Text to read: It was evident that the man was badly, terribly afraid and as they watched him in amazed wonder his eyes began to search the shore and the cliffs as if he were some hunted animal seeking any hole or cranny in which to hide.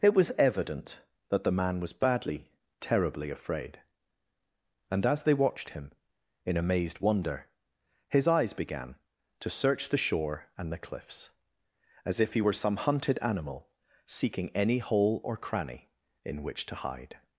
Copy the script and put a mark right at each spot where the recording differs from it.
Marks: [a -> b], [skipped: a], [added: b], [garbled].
It was evident that the man was badly, terribly afraid and as they watched him in amazed wonder his eyes began to search the shore and the cliffs as if he were some hunted animal seeking any hole or cranny in which to hide.